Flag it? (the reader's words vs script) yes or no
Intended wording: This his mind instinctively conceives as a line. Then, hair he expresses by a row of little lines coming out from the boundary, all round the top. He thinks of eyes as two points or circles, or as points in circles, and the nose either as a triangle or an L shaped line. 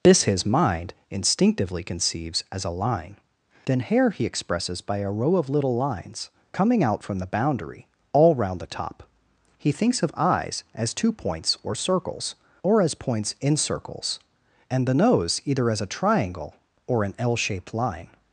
no